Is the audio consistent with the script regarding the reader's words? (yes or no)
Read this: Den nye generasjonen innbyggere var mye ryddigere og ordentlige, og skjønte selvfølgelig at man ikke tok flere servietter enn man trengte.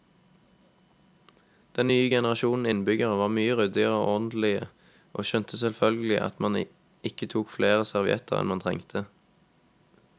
yes